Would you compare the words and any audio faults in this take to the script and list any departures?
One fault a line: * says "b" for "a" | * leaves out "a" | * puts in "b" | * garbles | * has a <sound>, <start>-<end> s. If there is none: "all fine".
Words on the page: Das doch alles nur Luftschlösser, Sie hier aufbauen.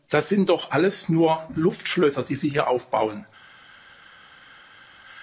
* puts in "sind"
* puts in "die"